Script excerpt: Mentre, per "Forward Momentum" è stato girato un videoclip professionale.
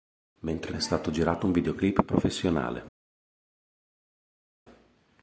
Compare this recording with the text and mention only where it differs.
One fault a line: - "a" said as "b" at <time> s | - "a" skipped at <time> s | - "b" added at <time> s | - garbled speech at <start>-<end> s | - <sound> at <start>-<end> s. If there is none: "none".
- "per Forward Momentum" skipped at 0.7 s